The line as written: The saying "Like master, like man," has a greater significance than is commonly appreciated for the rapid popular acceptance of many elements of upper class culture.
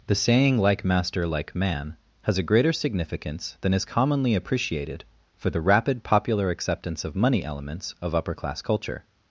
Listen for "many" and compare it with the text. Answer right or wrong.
wrong